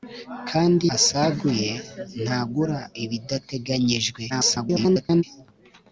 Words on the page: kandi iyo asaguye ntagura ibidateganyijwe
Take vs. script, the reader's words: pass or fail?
fail